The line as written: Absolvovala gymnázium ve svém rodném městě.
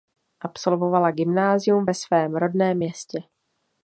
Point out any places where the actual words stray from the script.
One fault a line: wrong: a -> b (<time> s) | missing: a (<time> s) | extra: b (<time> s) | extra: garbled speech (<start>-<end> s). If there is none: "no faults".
no faults